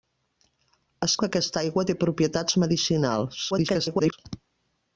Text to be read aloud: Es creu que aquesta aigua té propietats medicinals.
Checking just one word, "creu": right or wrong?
wrong